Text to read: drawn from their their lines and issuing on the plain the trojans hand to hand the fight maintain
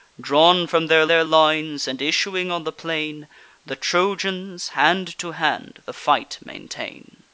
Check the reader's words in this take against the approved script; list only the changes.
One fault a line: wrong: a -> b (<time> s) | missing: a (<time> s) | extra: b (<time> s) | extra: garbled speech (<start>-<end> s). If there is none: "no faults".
no faults